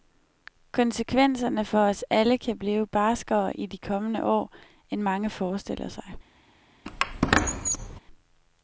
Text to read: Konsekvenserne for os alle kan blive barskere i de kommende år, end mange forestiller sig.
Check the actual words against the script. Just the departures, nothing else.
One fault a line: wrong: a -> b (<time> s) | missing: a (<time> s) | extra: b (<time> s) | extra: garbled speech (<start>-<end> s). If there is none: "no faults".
no faults